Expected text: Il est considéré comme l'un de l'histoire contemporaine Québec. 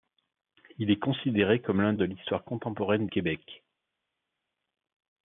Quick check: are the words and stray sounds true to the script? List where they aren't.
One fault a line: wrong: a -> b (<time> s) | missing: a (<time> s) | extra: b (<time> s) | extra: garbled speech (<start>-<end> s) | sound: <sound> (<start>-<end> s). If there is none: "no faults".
no faults